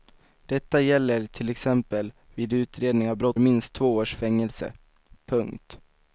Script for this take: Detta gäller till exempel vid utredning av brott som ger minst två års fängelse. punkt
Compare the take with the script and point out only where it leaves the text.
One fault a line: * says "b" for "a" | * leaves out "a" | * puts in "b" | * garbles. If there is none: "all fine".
* leaves out "som ger"